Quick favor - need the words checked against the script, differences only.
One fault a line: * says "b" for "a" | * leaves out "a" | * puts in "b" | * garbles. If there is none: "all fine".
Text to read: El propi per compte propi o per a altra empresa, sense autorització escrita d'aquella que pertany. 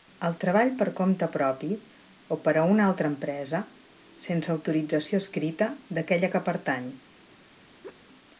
* says "treball" for "propi"
* puts in "una"